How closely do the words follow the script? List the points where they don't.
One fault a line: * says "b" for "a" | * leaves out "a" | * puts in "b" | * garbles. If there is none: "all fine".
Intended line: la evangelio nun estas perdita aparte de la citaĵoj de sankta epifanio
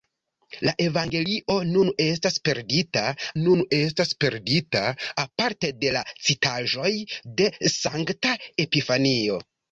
* puts in "nun estas perdita"